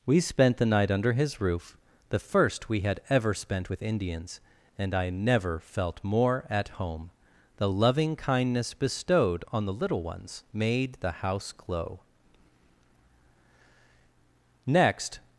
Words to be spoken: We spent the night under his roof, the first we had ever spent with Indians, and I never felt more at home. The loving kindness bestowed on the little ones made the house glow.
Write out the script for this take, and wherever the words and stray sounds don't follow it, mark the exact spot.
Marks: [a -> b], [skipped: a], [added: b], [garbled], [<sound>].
We spent the night under his roof, the first we had ever spent with Indians, and I never felt more at home. The loving kindness bestowed on the little ones made the house glow. [added: Next]